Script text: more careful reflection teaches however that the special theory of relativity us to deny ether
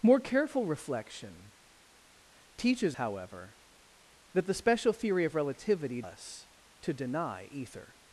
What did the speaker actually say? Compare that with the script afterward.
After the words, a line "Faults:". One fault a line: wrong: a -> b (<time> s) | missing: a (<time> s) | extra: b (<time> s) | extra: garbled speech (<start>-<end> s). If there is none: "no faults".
more careful reflection teaches however that the special theory of relativity us to deny ether
Faults:
no faults